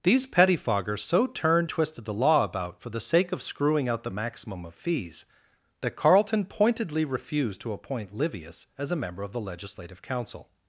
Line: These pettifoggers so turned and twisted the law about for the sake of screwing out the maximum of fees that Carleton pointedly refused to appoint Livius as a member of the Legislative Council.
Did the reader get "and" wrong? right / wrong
wrong